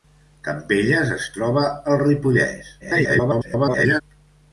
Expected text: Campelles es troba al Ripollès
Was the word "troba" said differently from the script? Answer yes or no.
no